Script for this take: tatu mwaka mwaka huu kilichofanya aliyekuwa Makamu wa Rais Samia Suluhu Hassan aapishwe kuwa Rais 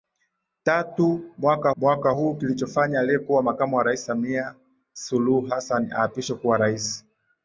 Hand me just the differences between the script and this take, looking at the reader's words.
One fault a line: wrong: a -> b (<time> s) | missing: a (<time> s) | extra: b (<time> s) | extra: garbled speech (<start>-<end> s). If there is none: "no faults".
no faults